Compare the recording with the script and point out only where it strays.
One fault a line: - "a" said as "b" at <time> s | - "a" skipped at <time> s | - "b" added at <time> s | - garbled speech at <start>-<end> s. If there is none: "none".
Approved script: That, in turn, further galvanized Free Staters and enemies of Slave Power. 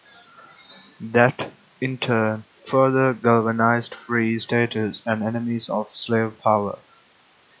none